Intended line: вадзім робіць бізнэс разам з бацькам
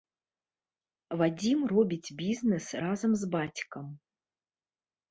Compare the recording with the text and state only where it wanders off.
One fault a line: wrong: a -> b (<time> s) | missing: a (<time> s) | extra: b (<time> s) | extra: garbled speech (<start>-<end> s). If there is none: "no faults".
no faults